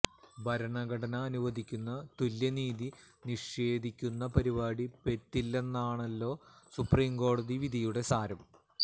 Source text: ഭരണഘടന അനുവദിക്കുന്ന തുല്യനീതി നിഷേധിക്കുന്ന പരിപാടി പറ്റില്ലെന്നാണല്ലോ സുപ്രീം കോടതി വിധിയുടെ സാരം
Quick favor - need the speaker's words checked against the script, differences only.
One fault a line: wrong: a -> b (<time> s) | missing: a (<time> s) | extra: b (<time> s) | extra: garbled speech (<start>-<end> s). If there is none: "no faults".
no faults